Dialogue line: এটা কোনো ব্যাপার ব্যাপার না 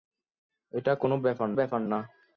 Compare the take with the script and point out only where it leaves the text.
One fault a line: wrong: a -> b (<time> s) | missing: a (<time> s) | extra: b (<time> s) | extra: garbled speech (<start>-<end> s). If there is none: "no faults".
no faults